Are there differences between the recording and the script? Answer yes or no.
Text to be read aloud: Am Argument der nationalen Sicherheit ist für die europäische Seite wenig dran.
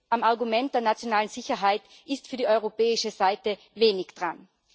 no